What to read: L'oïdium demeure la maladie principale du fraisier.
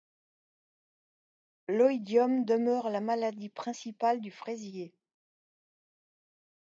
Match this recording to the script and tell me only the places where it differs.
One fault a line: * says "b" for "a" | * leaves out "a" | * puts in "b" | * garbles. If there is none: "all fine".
all fine